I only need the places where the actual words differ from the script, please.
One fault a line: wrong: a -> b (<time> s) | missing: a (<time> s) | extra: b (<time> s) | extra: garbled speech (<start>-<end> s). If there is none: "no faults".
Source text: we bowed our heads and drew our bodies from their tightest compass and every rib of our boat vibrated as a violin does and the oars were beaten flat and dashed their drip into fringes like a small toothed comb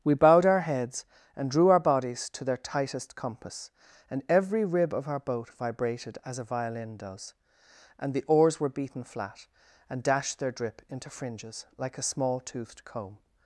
wrong: from -> to (2.3 s)